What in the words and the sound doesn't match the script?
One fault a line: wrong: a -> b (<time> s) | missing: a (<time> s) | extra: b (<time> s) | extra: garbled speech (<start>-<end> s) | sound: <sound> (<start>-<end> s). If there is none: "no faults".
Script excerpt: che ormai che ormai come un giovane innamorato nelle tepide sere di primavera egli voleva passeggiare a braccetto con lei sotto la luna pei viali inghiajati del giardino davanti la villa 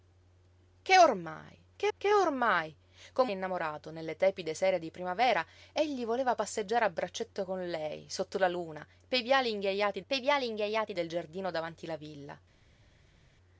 extra: che (2.0 s)
missing: un giovane (3.3 s)
extra: pei viali inghiajati (10.1 s)